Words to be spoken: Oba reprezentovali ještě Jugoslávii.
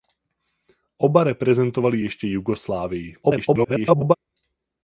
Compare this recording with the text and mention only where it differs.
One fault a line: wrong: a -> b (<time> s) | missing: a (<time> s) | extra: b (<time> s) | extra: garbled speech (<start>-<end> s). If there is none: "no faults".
extra: garbled speech (3.2-4.2 s)